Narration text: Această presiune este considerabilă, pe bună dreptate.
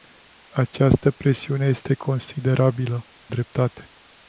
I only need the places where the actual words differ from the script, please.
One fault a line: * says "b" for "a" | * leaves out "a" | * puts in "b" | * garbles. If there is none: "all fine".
* leaves out "pe bună"